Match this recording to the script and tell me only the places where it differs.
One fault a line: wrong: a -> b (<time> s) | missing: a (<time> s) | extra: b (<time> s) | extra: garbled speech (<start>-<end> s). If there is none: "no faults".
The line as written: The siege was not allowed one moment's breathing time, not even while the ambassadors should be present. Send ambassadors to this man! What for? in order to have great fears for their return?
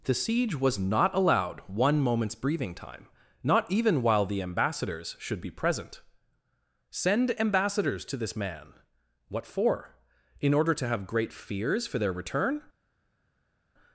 no faults